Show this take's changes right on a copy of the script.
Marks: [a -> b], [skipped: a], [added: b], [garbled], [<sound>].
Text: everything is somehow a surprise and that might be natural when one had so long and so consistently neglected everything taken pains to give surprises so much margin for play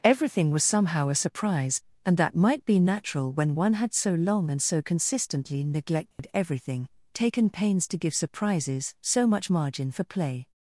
everything [is -> was] somehow a surprise and that might be natural when one had so long and so consistently neglected [dropout] everything taken pains to give surprises so much margin for play